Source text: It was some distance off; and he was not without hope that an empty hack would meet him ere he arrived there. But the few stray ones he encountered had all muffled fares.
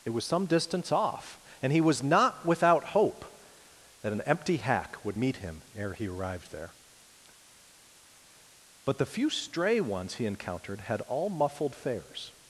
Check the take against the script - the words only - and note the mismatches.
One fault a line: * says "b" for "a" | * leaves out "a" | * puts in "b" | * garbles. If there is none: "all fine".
all fine